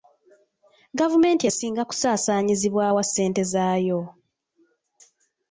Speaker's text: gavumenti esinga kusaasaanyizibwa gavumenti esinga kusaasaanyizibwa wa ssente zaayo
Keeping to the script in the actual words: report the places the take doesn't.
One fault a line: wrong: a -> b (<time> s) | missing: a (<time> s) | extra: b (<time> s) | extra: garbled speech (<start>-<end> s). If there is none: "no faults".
missing: gavumenti esinga kusaasaanyizibwa (2.8 s)